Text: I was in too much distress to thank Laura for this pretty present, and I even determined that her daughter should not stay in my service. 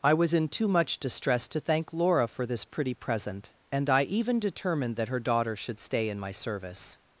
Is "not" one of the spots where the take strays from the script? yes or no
yes